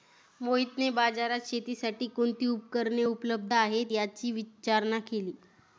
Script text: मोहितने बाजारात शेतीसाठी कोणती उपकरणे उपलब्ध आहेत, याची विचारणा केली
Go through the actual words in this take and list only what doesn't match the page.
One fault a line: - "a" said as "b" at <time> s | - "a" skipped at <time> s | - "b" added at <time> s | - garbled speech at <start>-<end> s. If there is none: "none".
none